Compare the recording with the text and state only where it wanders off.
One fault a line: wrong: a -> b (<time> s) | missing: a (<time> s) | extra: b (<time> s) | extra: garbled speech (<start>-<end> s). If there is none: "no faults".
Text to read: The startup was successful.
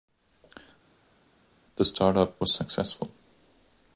no faults